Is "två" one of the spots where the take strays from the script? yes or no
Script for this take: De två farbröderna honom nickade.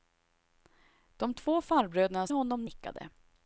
no